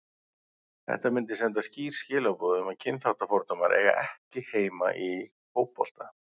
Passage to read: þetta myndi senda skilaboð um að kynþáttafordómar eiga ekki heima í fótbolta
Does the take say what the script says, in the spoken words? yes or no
no